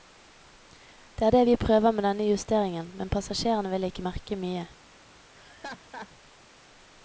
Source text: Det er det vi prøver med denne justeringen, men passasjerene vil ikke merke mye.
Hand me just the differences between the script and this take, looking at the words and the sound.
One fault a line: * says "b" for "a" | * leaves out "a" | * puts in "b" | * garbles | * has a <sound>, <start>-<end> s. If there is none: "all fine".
* has a laugh, 5.3-6.1 s